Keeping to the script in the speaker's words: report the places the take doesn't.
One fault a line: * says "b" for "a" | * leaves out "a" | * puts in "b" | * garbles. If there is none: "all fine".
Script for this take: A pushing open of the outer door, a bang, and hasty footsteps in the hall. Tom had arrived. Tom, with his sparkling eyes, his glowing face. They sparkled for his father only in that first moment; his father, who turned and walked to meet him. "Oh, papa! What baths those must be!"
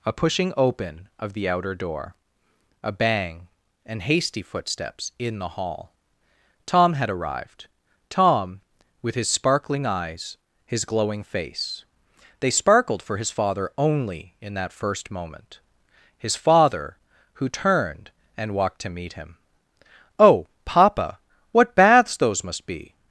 all fine